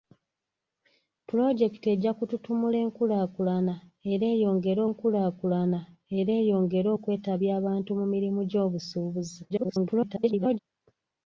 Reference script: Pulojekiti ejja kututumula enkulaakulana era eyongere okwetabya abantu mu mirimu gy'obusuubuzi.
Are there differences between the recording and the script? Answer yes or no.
yes